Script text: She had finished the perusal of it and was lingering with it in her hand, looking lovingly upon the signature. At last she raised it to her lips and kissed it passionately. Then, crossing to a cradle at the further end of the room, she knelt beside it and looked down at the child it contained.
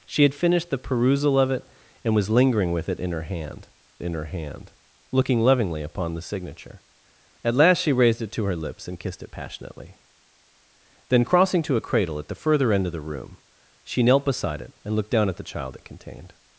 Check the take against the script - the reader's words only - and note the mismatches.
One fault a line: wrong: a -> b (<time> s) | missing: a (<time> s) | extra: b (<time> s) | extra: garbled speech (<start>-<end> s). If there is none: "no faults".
extra: in her hand (4.0 s)